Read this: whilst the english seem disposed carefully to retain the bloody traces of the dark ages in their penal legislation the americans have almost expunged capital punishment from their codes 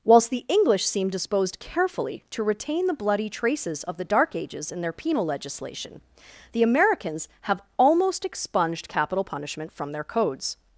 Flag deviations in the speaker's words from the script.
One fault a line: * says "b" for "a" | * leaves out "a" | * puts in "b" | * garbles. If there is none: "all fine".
all fine